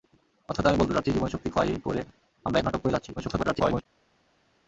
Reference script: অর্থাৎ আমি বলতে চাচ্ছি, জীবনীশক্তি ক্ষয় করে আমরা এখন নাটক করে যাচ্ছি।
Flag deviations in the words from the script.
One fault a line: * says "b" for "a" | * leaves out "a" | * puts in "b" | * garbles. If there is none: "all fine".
* leaves out "এখন"
* garbles